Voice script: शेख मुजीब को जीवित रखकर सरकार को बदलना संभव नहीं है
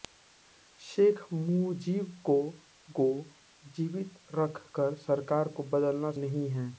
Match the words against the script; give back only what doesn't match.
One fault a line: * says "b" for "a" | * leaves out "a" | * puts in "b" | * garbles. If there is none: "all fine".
* puts in "को"
* leaves out "संभव"